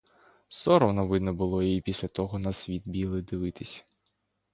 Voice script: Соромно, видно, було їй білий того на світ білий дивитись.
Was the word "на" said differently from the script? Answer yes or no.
no